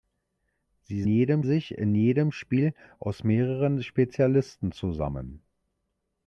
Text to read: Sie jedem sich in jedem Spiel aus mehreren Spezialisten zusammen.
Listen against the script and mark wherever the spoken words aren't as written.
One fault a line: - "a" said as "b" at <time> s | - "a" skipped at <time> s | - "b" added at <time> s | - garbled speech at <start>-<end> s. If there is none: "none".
none